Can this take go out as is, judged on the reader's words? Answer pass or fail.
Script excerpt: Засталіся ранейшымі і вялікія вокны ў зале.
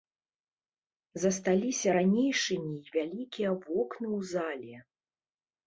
pass